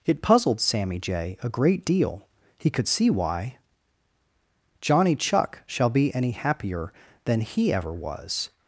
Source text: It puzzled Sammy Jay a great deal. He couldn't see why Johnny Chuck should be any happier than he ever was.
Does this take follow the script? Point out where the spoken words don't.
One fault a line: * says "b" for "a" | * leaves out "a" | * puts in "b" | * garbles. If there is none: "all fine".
* says "could" for "couldn't"
* says "shall" for "should"